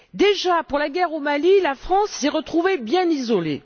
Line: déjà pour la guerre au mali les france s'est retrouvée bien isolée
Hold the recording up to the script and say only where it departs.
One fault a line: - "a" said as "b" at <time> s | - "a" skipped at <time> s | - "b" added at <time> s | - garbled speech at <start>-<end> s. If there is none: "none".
- "les" said as "la" at 1.6 s